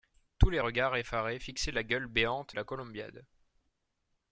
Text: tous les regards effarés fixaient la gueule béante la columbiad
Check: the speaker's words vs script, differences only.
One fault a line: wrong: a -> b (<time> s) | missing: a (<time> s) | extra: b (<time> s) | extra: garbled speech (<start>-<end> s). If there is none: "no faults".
no faults